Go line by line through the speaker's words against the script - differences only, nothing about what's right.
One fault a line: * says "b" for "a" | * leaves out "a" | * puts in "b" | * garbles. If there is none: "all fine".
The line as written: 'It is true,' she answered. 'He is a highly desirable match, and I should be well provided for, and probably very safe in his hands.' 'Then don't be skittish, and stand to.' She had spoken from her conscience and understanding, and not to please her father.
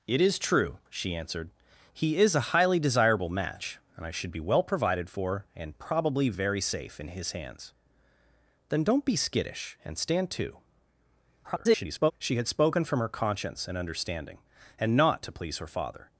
* garbles